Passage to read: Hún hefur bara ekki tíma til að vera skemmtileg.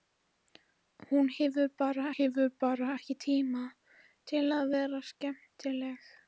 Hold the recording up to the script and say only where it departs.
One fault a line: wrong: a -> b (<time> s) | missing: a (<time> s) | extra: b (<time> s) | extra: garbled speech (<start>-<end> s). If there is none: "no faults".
extra: hefur bara (2.1 s)